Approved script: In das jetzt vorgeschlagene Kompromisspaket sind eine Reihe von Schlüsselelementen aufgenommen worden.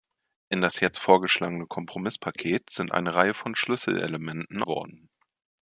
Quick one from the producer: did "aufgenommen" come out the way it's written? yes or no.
no